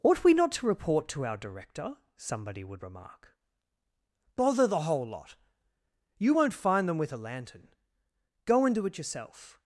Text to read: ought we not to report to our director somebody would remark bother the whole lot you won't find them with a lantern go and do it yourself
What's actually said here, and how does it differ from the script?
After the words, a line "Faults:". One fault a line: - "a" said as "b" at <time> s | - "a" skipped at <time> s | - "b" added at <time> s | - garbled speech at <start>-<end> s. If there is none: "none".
ought we not to report to our director somebody would remark bother the whole lot you won't find them with a lantern go and do it yourself
Faults:
none